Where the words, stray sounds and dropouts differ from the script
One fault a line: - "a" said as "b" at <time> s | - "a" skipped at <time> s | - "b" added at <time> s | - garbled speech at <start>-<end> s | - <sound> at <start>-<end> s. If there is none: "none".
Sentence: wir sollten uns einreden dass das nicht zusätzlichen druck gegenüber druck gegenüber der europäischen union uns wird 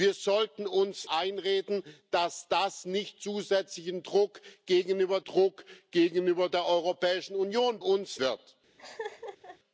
- laugh at 8.8-9.6 s